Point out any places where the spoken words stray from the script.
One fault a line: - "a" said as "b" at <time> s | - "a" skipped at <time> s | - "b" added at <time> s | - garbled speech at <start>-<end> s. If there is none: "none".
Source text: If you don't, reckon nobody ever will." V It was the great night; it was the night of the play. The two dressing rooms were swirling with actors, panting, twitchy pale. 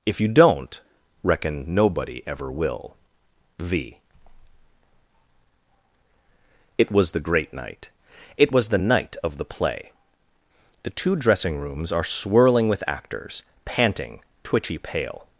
- "were" said as "are" at 11.9 s